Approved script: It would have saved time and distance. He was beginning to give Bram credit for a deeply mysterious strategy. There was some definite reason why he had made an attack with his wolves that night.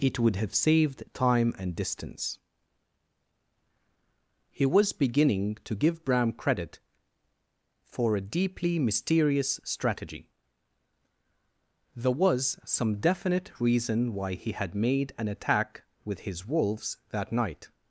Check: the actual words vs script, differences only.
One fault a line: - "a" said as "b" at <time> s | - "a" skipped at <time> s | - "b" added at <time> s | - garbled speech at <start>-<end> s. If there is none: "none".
none